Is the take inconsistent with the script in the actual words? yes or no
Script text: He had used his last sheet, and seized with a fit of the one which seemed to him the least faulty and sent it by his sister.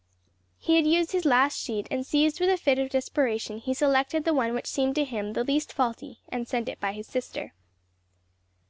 yes